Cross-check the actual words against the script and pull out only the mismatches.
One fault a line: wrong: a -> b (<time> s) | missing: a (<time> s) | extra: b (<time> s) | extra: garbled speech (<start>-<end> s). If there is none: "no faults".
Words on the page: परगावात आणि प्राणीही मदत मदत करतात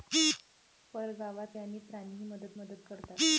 no faults